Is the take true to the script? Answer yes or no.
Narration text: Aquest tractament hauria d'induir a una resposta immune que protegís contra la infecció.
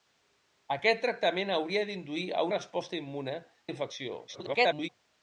no